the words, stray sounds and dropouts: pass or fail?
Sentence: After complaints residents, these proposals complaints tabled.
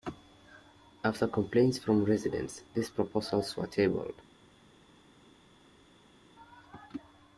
fail